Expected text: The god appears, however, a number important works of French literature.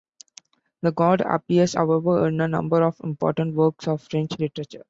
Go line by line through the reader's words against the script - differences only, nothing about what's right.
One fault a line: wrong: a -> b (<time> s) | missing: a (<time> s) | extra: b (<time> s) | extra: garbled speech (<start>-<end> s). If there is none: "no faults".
extra: in (2.3 s)
extra: of (2.8 s)